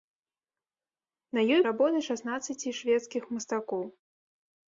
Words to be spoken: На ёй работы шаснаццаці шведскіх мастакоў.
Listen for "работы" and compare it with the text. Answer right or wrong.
right